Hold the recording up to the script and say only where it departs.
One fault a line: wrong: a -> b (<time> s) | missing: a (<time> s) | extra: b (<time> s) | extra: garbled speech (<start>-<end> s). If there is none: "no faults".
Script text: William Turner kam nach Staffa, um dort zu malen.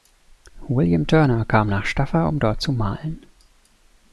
no faults